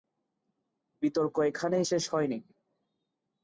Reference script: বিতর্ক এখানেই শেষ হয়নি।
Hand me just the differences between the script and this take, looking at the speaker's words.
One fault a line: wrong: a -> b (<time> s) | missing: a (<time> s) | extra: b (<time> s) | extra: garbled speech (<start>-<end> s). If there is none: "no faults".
no faults